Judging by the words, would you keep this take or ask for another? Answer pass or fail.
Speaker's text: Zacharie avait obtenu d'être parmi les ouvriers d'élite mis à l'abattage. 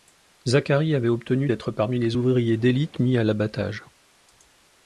pass